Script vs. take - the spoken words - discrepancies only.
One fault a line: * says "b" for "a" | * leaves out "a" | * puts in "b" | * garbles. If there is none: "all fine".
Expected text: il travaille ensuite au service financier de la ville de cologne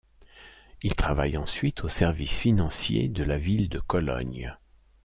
all fine